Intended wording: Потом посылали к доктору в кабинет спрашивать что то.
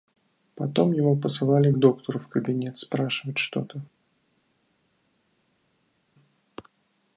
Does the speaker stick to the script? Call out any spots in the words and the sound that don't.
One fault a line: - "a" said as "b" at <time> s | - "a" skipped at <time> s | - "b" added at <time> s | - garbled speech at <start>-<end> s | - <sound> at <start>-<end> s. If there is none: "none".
- "его" added at 0.9 s